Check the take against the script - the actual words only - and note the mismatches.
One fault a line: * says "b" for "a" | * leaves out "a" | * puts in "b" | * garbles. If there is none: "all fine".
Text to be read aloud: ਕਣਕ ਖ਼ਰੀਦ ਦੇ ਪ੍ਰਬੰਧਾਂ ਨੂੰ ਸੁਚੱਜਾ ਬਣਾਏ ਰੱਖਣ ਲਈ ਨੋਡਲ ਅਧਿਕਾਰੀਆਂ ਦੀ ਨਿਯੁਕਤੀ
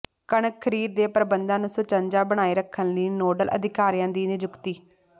all fine